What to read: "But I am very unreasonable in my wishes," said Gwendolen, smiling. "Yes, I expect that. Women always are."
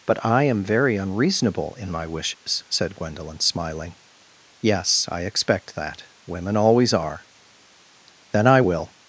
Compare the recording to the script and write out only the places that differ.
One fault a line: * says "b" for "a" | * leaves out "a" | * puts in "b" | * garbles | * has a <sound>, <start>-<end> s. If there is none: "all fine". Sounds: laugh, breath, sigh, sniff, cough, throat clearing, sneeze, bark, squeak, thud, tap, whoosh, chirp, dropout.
* has a dropout, 2.3-2.5 s
* puts in "Then I will"